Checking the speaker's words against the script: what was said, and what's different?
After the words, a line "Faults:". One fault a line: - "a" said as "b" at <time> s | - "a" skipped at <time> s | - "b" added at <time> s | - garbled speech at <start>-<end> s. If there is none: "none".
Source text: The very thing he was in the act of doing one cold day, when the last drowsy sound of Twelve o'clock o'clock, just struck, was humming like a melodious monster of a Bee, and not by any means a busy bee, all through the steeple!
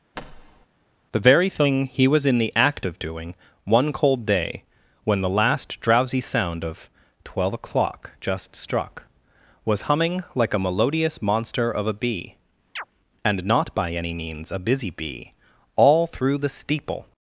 The very thing he was in the act of doing one cold day, when the last drowsy sound of Twelve o'clock, just struck, was humming like a melodious monster of a Bee, and not by any means a busy bee, all through the steeple!
Faults:
- "o'clock" skipped at 8.1 s